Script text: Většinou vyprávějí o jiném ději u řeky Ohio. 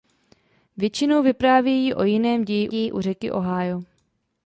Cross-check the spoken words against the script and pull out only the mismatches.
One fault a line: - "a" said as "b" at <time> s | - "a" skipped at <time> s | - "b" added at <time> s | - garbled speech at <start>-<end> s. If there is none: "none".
- "ději" added at 2.7 s